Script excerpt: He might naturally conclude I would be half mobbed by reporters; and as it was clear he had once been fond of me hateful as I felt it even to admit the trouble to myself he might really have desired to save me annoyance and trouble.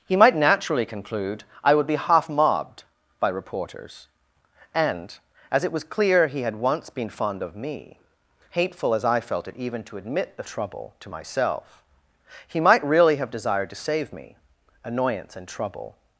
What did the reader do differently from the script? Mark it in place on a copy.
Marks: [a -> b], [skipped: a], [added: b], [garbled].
He might naturally conclude I would be half mobbed by reporters; and as it was clear he had once been fond of me hateful as I felt it even to admit the trouble to myself he might really have desired to save me annoyance and trouble.